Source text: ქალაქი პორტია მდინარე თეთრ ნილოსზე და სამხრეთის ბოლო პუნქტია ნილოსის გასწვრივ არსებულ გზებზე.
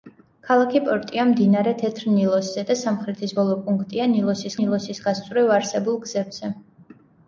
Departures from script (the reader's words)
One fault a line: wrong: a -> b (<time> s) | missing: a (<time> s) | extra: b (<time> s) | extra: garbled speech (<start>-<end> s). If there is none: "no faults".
extra: ნილოსის (4.6 s)